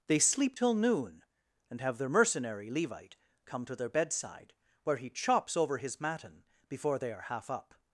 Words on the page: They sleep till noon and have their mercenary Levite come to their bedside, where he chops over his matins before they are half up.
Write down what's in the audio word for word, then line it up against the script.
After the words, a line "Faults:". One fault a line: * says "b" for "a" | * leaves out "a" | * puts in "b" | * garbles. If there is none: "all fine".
They sleep till noon and have their mercenary Levite come to their bedside, where he chops over his matin before they are half up.
Faults:
* says "matin" for "matins"